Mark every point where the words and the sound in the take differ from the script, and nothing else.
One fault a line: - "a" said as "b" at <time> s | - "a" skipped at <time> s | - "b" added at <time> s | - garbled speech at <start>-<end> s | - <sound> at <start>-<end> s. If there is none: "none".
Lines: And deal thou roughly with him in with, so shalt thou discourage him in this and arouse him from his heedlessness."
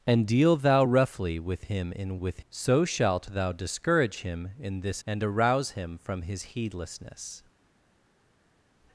none